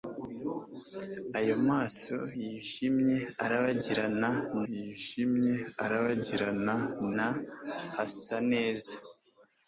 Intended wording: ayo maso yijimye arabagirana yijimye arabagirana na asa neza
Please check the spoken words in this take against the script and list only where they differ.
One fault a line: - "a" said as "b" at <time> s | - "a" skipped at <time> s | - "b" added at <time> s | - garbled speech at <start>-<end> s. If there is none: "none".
none